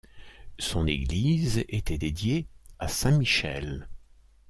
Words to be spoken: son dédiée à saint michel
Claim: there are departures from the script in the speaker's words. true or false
true